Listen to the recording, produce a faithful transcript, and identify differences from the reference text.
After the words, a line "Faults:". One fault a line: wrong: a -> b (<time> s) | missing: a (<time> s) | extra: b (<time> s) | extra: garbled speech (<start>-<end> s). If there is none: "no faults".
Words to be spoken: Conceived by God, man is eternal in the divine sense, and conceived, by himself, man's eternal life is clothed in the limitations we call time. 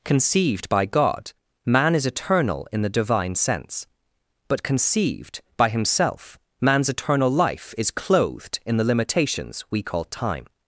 Conceived by God, man is eternal in the divine sense, but conceived, by himself, man's eternal life is clothed in the limitations we call time.
Faults:
wrong: and -> but (4.5 s)